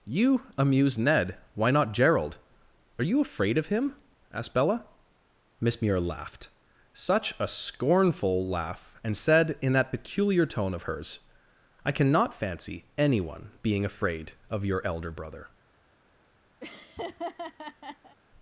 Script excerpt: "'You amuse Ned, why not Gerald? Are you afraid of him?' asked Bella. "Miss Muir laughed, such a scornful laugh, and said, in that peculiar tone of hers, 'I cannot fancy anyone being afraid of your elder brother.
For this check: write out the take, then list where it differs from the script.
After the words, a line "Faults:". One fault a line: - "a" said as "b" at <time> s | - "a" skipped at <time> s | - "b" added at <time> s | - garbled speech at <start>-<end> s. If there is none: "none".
"'You amuse Ned, why not Gerald? Are you afraid of him?' asked Bella. "Miss Muir laughed, such a scornful laugh, and said, in that peculiar tone of hers, 'I cannot fancy anyone being afraid of your elder brother.
Faults:
none